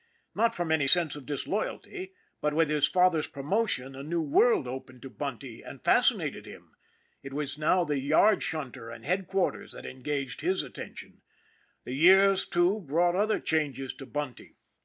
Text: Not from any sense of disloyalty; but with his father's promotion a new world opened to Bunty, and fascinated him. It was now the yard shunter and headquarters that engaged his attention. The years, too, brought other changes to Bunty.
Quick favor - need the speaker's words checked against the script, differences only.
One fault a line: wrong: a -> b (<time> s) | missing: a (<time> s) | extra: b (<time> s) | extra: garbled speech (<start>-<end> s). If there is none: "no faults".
no faults